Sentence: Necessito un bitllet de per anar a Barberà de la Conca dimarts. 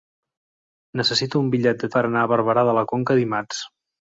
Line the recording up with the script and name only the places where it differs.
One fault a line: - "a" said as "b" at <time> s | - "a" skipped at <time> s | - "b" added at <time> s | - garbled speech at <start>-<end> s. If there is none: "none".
none